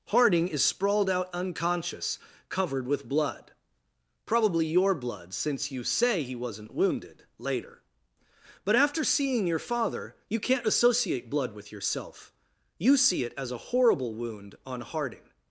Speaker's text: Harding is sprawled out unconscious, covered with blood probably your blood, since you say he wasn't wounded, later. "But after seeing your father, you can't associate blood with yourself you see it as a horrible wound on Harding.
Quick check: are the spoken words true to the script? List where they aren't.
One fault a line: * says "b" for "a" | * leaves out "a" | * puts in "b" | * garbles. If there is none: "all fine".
all fine